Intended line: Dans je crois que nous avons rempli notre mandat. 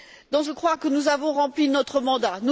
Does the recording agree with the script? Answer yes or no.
yes